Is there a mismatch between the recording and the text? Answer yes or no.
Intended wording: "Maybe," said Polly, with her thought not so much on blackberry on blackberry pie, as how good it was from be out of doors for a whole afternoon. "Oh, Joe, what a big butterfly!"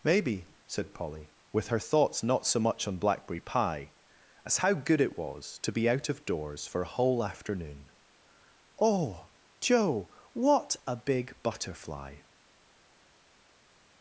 yes